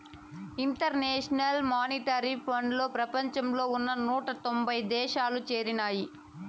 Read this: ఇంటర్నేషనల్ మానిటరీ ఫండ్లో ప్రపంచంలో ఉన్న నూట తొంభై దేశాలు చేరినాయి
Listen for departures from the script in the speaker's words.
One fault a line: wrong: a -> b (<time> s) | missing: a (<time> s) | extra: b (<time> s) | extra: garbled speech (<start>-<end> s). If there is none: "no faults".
no faults